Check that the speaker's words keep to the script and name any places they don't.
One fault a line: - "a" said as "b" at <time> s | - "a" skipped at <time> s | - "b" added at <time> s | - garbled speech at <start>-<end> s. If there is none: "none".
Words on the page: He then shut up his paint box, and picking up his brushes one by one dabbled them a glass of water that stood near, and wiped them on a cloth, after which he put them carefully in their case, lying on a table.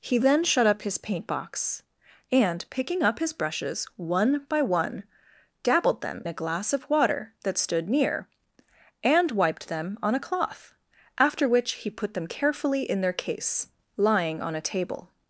none